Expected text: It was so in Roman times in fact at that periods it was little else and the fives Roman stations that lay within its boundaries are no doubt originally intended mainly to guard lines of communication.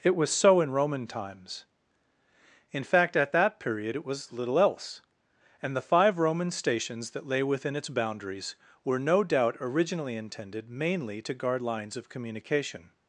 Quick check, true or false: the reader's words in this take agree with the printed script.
false